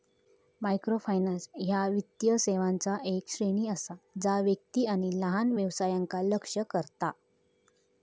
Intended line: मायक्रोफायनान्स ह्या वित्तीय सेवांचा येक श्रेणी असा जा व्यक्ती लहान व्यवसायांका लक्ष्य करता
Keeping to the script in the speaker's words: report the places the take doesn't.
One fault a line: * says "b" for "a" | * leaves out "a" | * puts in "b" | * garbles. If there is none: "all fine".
* puts in "आणि"